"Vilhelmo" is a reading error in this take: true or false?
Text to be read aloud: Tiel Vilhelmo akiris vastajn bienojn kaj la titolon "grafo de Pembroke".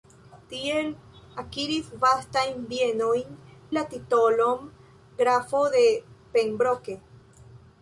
true